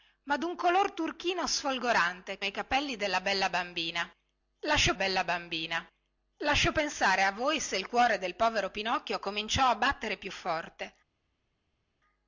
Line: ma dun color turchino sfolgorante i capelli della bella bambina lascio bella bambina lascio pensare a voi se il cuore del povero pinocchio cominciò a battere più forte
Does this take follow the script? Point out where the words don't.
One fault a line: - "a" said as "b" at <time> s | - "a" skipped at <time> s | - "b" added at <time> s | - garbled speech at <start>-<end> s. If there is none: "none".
none